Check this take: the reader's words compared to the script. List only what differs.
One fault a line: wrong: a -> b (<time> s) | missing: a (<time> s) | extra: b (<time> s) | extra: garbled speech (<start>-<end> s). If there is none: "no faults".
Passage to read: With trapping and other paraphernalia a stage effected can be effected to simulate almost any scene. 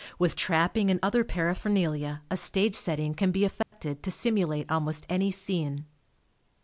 wrong: effected -> setting (2.8 s)